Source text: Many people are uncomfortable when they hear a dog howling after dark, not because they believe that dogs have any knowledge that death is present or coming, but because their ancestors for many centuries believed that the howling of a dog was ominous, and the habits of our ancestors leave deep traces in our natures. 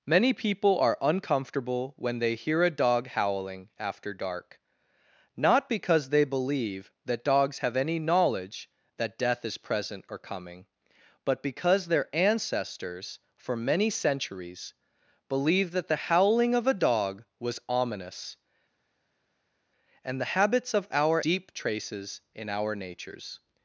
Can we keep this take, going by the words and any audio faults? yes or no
no